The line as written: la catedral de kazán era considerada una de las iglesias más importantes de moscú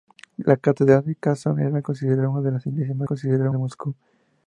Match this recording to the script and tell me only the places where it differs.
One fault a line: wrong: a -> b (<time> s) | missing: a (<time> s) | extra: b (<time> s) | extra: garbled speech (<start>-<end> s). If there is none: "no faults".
wrong: importantes -> considerada (3.0 s)